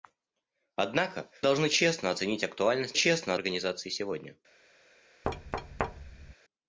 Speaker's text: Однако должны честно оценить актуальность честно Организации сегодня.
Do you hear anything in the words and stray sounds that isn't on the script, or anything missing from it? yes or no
yes